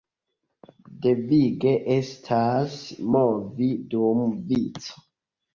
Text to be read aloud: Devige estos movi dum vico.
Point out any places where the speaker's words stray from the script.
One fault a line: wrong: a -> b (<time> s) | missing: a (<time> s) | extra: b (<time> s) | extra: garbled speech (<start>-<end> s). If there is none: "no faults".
wrong: estos -> estas (2.0 s)